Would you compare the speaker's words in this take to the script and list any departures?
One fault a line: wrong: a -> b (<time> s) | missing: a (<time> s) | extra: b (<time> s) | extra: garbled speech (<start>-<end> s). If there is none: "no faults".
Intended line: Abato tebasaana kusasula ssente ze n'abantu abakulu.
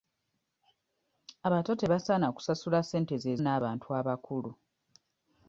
no faults